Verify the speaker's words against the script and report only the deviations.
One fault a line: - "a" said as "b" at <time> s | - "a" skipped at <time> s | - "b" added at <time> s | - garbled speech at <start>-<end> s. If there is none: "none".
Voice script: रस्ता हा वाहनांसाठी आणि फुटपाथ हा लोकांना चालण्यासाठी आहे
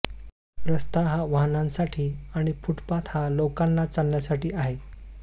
none